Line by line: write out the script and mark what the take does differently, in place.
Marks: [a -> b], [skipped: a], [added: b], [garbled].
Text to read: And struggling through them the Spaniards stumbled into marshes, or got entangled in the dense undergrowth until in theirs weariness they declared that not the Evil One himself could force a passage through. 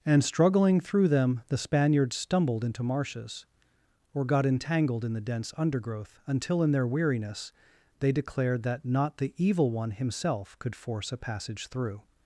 And struggling through them the Spaniards stumbled into marshes, or got entangled in the dense undergrowth until in [theirs -> their] weariness they declared that not the Evil One himself could force a passage through.